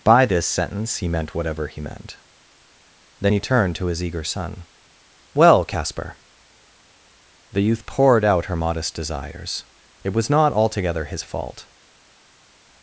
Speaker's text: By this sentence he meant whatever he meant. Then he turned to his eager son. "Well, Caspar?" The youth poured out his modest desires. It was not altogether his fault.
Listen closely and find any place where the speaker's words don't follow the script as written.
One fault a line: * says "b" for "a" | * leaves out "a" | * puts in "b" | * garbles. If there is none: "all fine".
* says "her" for "his"